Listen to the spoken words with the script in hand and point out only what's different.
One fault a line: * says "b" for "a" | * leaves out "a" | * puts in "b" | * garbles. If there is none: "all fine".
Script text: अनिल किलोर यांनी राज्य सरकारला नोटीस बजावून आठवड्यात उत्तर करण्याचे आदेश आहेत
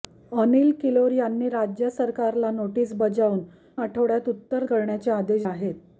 all fine